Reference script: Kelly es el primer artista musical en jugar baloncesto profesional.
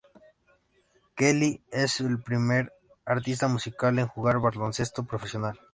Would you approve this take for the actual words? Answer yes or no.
yes